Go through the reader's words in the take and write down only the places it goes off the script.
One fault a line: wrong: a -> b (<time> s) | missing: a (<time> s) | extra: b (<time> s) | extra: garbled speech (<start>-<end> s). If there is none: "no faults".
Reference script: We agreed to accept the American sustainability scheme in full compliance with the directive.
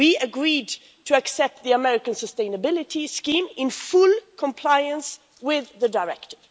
no faults